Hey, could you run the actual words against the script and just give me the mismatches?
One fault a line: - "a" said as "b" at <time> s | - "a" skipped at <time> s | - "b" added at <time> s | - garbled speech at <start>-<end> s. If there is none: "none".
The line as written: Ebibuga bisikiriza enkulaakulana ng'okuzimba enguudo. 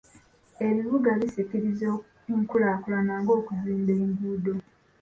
none